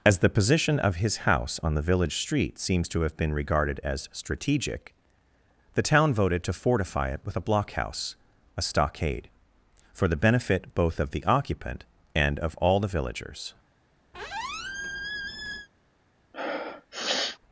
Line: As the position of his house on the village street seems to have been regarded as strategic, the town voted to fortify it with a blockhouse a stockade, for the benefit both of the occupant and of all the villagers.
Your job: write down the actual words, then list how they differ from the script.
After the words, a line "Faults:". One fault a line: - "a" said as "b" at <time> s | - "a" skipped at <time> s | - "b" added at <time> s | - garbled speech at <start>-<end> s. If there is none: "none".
As the position of his house on the village street seems to have been regarded as strategic, the town voted to fortify it with a blockhouse a stockade, for the benefit both of the occupant and of all the villagers.
Faults:
none